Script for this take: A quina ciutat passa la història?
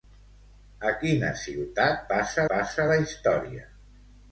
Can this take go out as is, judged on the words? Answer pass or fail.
fail